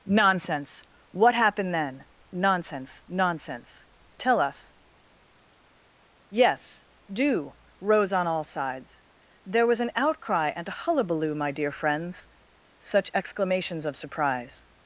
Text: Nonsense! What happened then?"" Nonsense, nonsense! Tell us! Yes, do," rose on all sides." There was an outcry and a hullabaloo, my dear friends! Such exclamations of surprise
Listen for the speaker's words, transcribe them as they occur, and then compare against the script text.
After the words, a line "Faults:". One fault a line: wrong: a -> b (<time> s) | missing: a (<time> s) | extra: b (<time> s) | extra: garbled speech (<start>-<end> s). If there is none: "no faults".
Nonsense! What happened then?"" Nonsense, nonsense! Tell us! Yes, do," rose on all sides." There was an outcry and a hullabaloo, my dear friends! Such exclamations of surprise
Faults:
no faults